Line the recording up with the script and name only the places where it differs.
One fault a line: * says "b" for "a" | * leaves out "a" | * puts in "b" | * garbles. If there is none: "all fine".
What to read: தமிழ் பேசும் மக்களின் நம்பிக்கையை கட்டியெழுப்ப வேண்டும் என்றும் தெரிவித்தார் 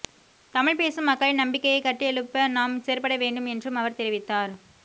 * puts in "நாம் செயற்பட"
* puts in "அவர்"